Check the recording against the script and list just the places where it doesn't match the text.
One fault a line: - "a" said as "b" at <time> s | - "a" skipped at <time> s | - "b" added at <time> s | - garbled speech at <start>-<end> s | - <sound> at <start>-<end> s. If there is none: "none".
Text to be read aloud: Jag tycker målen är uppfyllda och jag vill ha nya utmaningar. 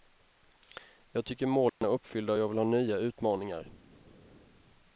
- dropout at 1.7-1.8 s